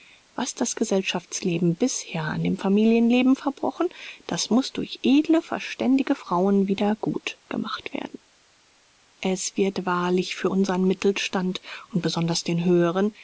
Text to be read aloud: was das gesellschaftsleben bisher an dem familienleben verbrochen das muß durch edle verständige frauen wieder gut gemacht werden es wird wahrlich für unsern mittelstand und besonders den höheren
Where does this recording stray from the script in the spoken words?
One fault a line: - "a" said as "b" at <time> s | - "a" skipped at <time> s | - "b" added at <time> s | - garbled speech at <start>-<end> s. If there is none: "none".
none